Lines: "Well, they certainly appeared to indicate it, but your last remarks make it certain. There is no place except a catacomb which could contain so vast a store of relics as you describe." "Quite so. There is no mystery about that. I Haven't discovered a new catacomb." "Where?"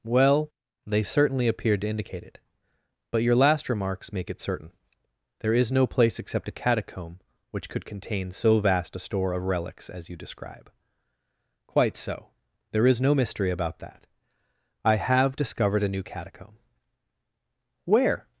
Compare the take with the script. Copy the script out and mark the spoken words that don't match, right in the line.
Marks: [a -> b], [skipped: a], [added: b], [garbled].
"Well, they certainly appeared to indicate it, but your last remarks make it certain. There is no place except a catacomb which could contain so vast a store of relics as you describe." "Quite so. There is no mystery about that. I [Haven't -> HAVE] discovered a new catacomb." "Where?"